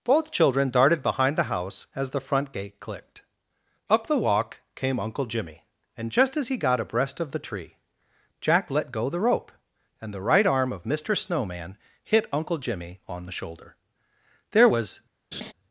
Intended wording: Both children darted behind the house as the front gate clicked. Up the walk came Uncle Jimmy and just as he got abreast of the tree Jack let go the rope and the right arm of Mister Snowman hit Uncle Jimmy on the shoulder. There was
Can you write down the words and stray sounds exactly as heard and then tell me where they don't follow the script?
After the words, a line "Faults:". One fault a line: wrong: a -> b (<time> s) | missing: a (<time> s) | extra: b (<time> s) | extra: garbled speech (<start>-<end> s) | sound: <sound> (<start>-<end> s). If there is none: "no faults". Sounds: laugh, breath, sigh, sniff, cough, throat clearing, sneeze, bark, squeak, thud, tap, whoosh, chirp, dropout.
Both children darted behind the house as the front gate clicked. Up the walk came Uncle Jimmy and just as he got abreast of the tree Jack let go the rope and the right arm of Mister Snowman hit Uncle Jimmy on the shoulder. There was
Faults:
sound: laugh (15.3-15.5 s)